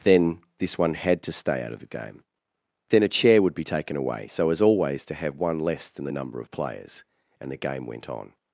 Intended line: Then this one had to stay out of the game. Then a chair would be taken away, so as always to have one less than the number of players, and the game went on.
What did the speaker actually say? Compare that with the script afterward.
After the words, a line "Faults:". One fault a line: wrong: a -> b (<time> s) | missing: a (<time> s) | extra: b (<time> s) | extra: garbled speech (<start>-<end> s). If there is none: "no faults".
Then this one had to stay out of the game. Then a chair would be taken away, so as always to have one less than the number of players, and the game went on.
Faults:
no faults